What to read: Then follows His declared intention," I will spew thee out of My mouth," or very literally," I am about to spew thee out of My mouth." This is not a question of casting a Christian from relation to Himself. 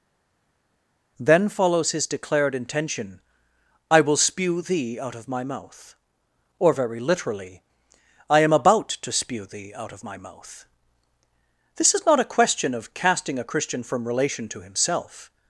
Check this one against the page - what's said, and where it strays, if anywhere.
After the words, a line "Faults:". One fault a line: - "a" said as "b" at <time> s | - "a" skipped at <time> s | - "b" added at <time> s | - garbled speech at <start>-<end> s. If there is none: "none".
Then follows His declared intention," I will spew thee out of My mouth," or very literally," I am about to spew thee out of My mouth." This is not a question of casting a Christian from relation to Himself.
Faults:
none